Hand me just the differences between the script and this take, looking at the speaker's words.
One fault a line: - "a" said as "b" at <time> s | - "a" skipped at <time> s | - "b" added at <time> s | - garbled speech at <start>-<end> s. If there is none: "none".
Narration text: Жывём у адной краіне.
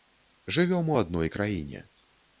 none